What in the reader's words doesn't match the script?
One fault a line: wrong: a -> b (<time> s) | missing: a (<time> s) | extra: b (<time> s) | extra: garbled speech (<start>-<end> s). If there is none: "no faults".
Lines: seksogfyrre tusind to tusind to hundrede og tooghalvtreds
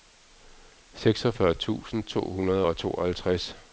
missing: tusind to (2.2 s)